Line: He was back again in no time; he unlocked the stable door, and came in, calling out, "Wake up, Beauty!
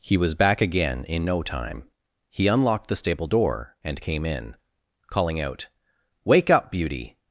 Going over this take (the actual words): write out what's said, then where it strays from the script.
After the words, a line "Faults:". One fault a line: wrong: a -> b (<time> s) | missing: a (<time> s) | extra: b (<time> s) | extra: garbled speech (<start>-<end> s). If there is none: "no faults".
He was back again in no time; he unlocked the stable door, and came in, calling out, "Wake up, Beauty!
Faults:
no faults